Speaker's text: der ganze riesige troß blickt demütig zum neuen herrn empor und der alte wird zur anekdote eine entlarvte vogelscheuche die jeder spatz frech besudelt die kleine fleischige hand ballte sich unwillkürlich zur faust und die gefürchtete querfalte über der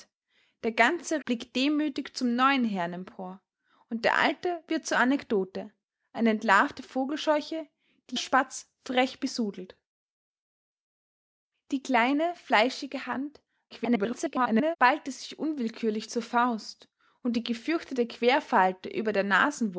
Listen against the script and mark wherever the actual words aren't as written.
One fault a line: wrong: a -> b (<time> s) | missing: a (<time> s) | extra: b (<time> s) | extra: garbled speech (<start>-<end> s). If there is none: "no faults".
missing: riesige troß (1.2 s)
missing: jeder (8.2 s)
extra: garbled speech (13.7-14.8 s)